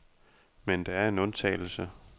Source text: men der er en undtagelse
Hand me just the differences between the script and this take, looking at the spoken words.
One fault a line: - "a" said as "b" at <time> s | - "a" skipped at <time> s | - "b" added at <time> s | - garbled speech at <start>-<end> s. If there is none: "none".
none